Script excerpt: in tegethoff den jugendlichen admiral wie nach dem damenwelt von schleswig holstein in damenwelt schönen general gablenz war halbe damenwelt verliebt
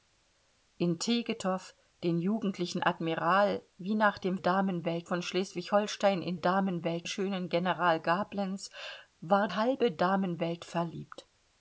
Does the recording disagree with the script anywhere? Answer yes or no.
no